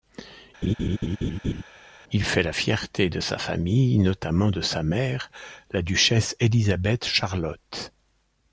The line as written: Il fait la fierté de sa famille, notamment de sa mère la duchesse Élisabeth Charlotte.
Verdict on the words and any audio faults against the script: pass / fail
fail